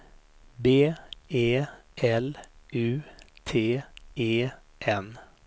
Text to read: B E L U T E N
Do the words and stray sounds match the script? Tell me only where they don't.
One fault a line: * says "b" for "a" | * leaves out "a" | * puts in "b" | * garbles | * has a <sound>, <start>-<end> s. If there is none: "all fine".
all fine